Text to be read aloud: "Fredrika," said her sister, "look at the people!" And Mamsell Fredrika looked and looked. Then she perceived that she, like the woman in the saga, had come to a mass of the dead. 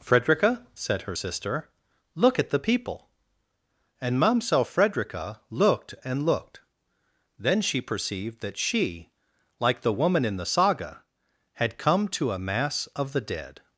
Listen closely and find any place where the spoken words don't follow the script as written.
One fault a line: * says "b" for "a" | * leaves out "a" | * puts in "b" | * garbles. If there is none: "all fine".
all fine